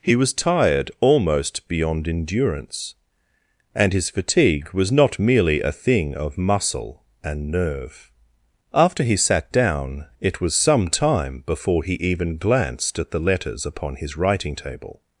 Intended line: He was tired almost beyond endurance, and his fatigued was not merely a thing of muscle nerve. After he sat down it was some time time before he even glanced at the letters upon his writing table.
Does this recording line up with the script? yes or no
no